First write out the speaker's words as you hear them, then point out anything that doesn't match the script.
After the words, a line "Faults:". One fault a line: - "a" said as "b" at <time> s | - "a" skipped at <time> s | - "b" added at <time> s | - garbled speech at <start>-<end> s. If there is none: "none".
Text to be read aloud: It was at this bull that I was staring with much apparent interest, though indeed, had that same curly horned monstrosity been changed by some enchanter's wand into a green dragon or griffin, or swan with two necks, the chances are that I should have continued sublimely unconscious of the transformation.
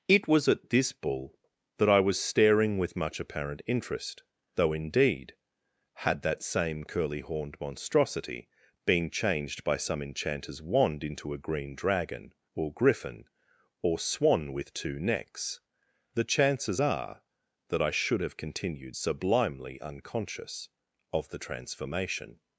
It was at this bull that I was staring with much apparent interest, though indeed, had that same curly horned monstrosity been changed by some enchanter's wand into a green dragon or griffin, or swan with two necks, the chances are that I should have continued sublimely unconscious of the transformation.
Faults:
none